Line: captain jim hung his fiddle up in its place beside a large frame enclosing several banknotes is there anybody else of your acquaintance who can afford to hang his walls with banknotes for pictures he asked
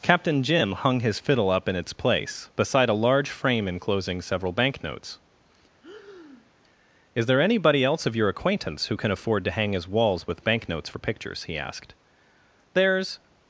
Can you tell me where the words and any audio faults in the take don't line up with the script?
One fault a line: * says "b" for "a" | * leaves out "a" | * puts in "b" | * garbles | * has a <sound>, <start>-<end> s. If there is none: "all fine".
* has a breath, 5.8-6.5 s
* puts in "there's"